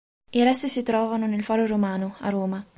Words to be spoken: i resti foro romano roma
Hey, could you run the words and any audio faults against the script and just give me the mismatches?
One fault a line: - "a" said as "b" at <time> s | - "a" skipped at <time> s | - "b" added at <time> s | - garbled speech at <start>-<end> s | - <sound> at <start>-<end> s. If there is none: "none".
- "si trovano nel" added at 0.7 s
- "a" added at 2.2 s